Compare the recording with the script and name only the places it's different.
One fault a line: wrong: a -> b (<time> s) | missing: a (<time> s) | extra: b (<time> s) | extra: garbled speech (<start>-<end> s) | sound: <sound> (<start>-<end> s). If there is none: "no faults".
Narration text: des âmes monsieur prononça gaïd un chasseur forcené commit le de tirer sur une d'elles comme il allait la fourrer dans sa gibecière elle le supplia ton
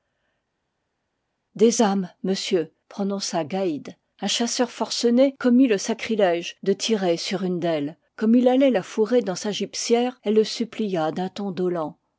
extra: sacrilège (5.8 s)
extra: d'un (11.1 s)